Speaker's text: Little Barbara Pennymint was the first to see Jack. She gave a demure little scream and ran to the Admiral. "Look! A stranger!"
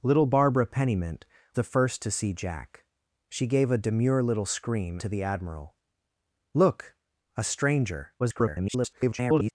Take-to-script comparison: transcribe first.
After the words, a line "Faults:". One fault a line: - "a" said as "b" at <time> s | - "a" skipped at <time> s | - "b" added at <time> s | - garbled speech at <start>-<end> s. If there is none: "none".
Little Barbara Pennymint the first to see Jack. She gave a demure little scream to the Admiral. "Look! A stranger!" [garbled]
Faults:
- "was" skipped at 1.2 s
- "and ran" skipped at 5.0 s
- garbled speech at 8.2-9.5 s